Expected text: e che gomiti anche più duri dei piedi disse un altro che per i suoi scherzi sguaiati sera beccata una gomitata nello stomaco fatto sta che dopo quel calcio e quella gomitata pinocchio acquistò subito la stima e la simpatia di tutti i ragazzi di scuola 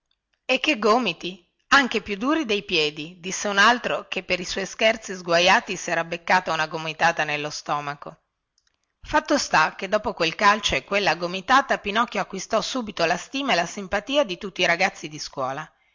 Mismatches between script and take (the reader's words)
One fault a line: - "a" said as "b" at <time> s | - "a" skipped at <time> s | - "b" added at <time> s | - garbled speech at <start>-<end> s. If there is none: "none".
none